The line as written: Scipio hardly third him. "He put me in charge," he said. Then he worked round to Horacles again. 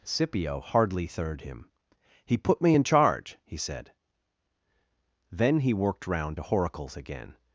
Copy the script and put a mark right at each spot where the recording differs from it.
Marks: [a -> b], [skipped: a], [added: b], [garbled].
Scipio hardly third him. "He put me in charge," he said. Then he worked round to Horacles again.